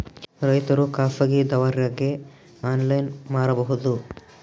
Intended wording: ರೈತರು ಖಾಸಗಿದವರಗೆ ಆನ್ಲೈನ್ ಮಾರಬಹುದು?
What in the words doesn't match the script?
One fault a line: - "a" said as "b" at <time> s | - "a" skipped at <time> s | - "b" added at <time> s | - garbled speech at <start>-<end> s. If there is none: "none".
none